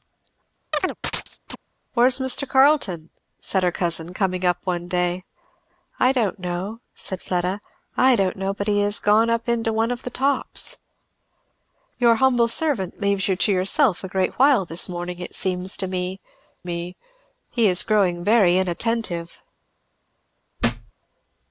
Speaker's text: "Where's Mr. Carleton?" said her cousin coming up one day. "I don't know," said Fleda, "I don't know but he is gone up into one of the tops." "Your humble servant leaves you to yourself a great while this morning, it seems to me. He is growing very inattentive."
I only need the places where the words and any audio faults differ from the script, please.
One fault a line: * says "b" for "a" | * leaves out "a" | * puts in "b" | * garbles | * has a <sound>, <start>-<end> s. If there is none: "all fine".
* has a chirp, 0.7-1.6 s
* puts in "me"
* has a thud, 20.6-20.9 s